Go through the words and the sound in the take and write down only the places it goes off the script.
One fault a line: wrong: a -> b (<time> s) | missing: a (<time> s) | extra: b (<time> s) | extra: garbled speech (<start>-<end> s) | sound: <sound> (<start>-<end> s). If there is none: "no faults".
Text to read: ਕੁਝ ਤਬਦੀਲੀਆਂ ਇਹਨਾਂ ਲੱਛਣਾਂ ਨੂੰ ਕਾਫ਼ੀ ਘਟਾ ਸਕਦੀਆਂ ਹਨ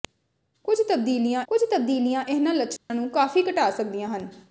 extra: ਕੁਝ ਤਬਦੀਲੀਆਂ (1.5 s)
sound: dropout (2.8-2.9 s)